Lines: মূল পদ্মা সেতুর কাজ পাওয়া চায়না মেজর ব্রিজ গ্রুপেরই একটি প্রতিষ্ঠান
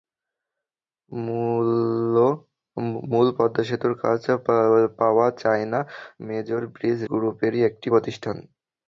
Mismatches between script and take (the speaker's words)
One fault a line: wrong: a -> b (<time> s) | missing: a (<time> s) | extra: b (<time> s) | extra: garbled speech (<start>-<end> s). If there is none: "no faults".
no faults